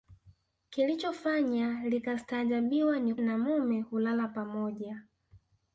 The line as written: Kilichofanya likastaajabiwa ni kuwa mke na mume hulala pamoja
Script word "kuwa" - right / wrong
wrong